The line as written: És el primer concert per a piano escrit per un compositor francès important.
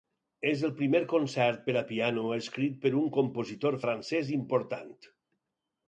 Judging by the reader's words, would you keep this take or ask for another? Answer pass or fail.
pass